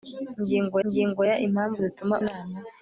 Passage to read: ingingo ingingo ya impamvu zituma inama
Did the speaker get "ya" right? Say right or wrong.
right